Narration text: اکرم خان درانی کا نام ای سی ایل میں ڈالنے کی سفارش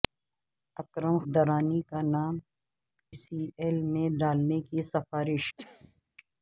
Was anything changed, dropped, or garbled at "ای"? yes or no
yes